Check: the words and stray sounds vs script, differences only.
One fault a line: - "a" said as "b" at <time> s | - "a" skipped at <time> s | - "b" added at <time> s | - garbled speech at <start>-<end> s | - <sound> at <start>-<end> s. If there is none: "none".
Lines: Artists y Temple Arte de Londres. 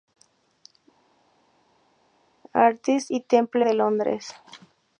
- "Arte" skipped at 3.6 s